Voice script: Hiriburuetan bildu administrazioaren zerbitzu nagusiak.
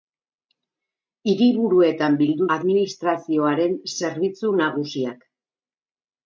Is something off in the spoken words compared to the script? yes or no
no